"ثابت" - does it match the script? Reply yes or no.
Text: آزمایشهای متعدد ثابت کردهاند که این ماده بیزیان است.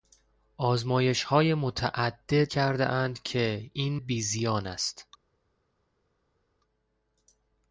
no